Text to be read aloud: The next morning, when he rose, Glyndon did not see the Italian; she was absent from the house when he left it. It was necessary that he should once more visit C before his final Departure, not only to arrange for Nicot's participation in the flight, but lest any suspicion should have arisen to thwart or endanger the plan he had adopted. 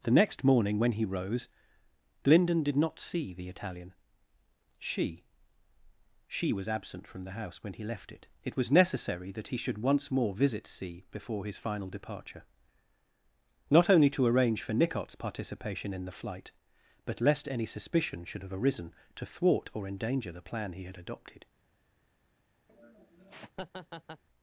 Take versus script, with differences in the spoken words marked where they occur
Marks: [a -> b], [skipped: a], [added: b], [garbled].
The next morning, when he rose, Glyndon did not see the Italian; she [added: she] was absent from the house when he left it. It was necessary that he should once more visit C before his final Departure, not only to arrange for Nicot's participation in the flight, but lest any suspicion should have arisen to thwart or endanger the plan he had adopted.